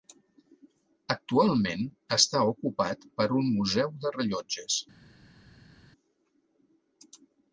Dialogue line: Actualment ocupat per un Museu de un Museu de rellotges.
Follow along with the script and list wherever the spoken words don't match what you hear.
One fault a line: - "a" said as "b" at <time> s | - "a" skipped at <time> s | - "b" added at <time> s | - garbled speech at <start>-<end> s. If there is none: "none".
- "està" added at 2.2 s
- "un Museu de" skipped at 4.2 s